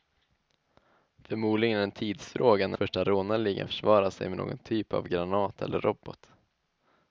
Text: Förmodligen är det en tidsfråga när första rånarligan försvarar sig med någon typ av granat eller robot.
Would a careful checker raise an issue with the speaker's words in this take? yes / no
no